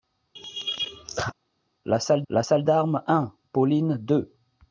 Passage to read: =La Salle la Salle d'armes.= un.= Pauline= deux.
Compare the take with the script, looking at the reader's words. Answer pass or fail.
pass